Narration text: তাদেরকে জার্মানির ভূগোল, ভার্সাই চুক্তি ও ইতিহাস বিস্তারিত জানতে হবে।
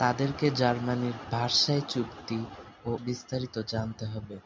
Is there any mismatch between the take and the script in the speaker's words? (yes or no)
yes